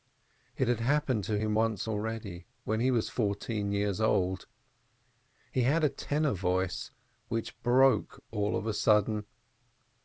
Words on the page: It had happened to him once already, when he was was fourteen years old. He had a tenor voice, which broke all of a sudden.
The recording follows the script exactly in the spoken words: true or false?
false